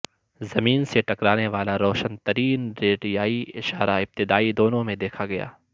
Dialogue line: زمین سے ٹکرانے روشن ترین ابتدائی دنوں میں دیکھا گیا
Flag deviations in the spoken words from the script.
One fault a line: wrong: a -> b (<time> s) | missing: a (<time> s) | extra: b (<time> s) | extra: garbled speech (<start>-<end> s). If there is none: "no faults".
extra: والا (1.5 s)
extra: ریڈیائی اشارہ (2.8 s)